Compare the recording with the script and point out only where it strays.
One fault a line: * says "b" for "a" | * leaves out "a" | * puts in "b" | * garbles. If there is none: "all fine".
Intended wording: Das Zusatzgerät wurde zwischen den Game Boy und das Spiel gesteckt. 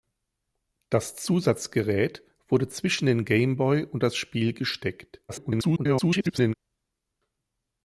* garbles